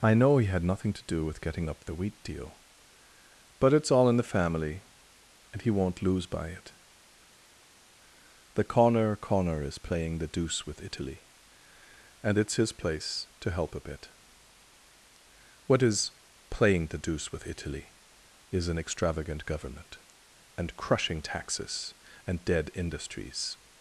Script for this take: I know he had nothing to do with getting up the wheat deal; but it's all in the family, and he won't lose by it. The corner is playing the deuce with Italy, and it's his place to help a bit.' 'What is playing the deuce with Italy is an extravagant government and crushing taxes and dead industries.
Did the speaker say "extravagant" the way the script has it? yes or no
yes